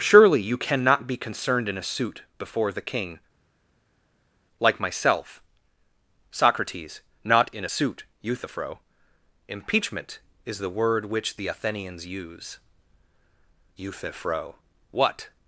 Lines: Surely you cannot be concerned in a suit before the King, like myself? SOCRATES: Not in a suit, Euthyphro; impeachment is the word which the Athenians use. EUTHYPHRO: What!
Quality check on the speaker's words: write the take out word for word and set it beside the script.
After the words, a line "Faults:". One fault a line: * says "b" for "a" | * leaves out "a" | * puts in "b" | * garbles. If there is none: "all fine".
Surely you cannot be concerned in a suit before the King, like myself? SOCRATES: Not in a suit, Euthyphro; impeachment is the word which the Athenians use. EUTHYPHRO: What!
Faults:
all fine